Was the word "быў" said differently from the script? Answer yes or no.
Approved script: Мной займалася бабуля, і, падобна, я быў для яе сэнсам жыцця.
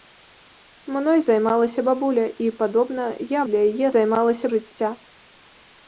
yes